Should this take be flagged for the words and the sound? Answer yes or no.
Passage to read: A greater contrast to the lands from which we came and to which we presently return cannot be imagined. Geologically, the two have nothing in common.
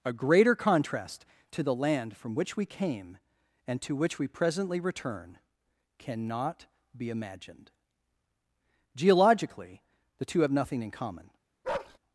yes